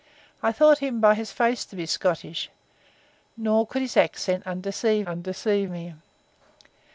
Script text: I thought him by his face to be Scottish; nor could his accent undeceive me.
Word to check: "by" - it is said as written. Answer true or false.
true